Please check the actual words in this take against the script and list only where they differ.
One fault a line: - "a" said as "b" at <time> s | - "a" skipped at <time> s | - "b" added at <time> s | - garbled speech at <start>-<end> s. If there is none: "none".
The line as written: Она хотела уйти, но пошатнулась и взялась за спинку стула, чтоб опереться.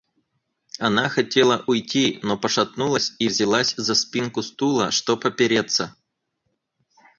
none